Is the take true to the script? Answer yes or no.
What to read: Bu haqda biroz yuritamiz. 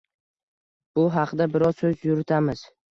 no